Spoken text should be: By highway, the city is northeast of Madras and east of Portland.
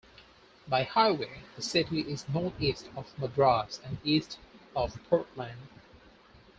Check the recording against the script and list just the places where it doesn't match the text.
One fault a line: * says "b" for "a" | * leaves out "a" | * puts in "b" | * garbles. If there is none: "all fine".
all fine